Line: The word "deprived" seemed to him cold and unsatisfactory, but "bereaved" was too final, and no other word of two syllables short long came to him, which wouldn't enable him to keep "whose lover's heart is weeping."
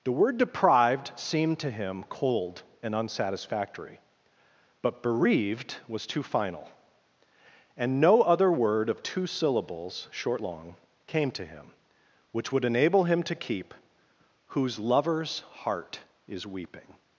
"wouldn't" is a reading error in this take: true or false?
true